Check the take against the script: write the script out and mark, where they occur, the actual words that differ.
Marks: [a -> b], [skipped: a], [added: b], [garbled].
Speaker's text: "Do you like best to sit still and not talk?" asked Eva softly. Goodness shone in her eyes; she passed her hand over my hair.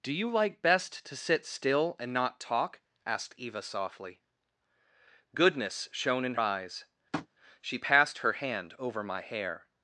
"Do you like best to sit still and not talk?" asked Eva softly. Goodness shone in [skipped: her] eyes; she passed her hand over my hair.